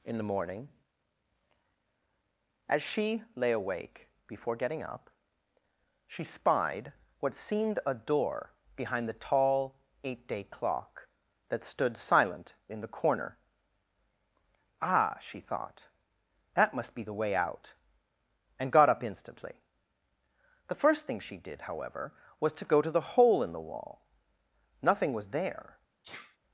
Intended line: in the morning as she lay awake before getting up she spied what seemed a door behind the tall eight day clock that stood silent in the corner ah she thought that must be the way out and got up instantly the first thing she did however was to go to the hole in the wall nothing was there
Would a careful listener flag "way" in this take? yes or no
no